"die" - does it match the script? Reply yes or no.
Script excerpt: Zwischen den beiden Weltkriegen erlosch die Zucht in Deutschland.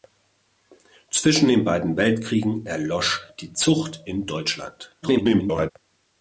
yes